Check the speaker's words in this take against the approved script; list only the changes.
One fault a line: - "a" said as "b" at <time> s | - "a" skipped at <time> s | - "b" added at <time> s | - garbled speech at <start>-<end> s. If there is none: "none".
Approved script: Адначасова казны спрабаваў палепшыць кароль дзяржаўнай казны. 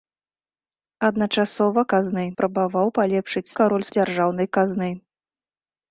none